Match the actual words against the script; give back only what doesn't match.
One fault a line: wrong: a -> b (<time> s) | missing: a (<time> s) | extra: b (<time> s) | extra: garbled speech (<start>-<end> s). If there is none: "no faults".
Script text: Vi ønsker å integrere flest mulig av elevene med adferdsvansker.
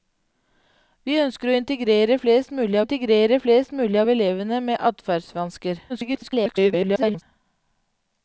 extra: integrere flest mulig (2.8 s)
extra: garbled speech (5.9-7.2 s)